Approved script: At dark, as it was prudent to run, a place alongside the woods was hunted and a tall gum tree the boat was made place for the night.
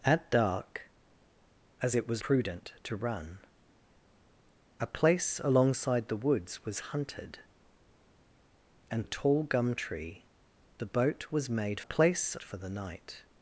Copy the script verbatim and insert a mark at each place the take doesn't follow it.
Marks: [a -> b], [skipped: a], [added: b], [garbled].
At dark, as it was prudent to run, a place alongside the woods was hunted and a tall gum tree the boat was made place for the night.